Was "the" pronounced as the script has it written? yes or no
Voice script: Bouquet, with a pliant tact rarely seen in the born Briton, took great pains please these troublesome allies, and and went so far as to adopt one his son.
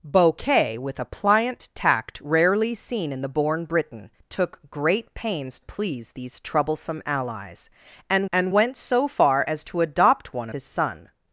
yes